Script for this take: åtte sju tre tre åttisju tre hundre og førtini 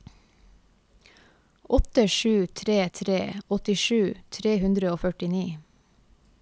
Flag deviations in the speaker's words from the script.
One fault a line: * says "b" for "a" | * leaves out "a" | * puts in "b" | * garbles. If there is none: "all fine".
all fine